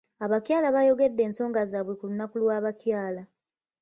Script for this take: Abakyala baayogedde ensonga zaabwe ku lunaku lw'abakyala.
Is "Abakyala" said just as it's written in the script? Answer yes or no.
yes